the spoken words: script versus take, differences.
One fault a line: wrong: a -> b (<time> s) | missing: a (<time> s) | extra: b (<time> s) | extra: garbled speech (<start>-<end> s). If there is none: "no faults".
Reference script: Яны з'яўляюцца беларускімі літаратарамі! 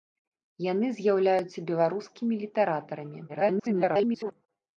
extra: garbled speech (3.3-4.3 s)